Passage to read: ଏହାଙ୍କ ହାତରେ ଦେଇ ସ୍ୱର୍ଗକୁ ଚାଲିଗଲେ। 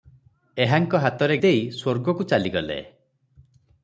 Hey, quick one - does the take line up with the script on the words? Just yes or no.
yes